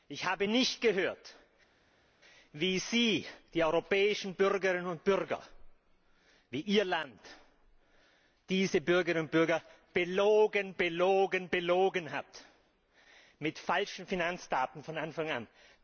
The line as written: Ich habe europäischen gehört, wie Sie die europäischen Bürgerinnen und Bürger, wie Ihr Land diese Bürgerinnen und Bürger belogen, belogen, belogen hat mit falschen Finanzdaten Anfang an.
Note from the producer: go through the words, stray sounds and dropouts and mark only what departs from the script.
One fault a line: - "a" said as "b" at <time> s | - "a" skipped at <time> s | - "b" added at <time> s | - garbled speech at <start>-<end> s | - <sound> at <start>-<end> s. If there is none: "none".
- "europäischen" said as "nicht" at 0.4 s
- "von" added at 14.8 s